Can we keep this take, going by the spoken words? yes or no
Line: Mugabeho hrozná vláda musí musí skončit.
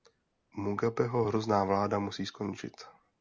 no